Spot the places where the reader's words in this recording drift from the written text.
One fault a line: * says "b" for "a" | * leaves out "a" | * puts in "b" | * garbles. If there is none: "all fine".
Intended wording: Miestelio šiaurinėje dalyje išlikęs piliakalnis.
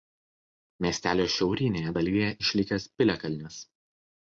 all fine